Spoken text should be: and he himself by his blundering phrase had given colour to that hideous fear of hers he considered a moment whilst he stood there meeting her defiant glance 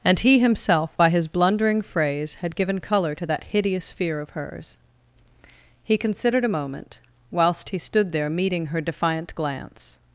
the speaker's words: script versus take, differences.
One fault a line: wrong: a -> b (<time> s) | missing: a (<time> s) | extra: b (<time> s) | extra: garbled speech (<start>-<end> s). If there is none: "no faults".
no faults